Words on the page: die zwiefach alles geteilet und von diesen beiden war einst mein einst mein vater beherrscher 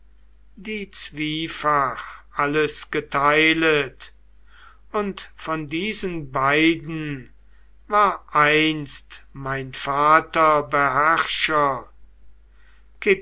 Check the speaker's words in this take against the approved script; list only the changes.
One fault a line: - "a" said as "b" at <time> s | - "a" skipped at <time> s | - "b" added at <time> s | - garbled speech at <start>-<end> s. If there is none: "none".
- "einst mein" skipped at 9.7 s